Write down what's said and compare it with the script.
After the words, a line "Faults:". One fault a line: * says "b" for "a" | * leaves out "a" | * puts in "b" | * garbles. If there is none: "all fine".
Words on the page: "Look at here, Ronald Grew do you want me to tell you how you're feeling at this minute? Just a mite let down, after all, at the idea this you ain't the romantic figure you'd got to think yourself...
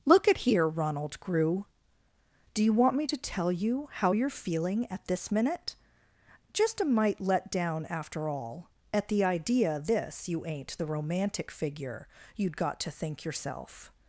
"Look at here, Ronald Grew do you want me to tell you how you're feeling at this minute? Just a mite let down, after all, at the idea this you ain't the romantic figure you'd got to think yourself...
Faults:
all fine